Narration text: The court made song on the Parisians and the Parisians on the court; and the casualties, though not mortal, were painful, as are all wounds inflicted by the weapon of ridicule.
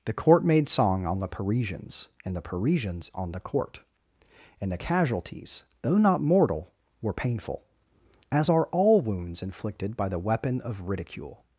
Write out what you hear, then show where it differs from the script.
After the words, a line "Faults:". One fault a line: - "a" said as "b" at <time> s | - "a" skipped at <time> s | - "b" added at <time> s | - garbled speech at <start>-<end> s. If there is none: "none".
The court made song on the Parisians and the Parisians on the court; and the casualties, though not mortal, were painful, as are all wounds inflicted by the weapon of ridicule.
Faults:
none